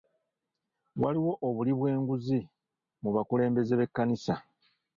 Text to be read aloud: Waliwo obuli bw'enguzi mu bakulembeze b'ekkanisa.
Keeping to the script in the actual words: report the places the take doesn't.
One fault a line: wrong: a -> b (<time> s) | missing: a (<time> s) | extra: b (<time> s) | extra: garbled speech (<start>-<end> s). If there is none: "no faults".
no faults